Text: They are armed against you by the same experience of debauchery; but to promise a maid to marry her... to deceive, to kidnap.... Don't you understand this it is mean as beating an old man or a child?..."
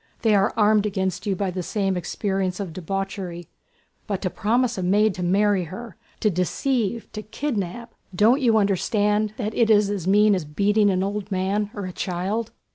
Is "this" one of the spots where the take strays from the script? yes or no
yes